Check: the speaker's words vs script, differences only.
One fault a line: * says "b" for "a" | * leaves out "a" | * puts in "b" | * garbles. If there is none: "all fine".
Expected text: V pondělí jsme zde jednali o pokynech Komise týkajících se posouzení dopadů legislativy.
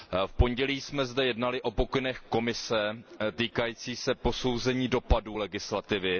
all fine